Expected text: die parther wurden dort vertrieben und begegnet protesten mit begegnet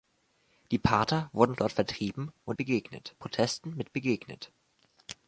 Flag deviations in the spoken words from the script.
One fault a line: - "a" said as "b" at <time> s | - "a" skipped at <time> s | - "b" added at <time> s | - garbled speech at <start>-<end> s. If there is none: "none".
none